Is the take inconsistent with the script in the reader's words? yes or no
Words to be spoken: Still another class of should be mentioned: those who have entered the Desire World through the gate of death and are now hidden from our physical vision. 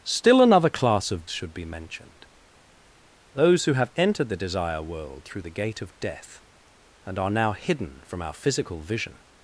no